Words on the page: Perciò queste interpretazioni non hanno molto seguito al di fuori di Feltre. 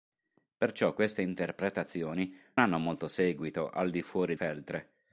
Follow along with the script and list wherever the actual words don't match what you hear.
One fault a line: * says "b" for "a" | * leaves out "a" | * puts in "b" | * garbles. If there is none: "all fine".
* leaves out "non"
* leaves out "di"